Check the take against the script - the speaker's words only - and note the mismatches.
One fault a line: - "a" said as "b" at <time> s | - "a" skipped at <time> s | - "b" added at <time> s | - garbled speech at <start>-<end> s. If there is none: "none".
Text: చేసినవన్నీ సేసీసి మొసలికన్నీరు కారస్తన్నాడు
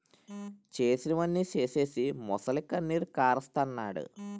none